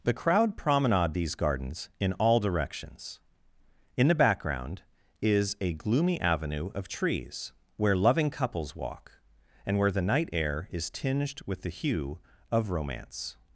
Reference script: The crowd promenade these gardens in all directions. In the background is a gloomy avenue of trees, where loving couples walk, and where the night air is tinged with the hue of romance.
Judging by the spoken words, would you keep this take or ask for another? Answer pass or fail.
pass